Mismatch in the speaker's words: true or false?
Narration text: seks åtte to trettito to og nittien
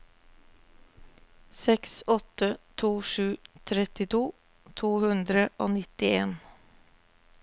true